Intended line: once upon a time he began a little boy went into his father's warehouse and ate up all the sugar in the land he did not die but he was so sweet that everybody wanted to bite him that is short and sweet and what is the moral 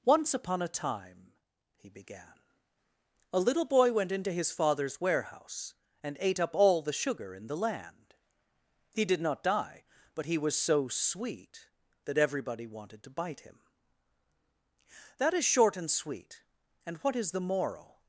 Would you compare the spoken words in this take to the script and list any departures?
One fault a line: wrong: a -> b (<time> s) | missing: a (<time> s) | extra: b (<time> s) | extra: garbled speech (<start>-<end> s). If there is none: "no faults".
no faults